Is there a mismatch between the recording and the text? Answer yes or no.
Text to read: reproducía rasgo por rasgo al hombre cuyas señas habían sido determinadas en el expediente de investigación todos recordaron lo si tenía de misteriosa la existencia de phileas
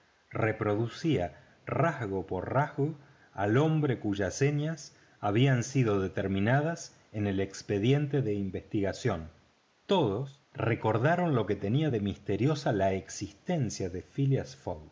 yes